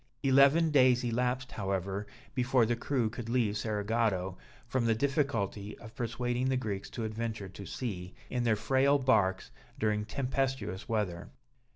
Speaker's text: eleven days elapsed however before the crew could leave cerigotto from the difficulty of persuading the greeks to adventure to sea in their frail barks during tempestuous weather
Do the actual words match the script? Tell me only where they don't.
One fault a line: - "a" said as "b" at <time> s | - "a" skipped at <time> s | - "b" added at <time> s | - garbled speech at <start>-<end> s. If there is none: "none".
none